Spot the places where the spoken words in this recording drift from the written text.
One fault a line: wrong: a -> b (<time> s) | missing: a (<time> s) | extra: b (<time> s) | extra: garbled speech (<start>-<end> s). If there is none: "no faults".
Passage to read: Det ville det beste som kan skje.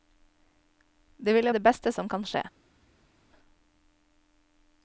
no faults